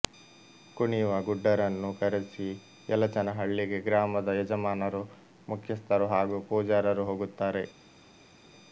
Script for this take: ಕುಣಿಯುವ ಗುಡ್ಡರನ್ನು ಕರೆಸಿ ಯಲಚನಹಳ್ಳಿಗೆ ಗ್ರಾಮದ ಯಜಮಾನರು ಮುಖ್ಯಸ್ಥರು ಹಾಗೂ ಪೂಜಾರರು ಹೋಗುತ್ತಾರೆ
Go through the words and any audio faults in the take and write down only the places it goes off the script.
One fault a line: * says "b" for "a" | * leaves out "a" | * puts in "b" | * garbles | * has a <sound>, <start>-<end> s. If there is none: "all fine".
all fine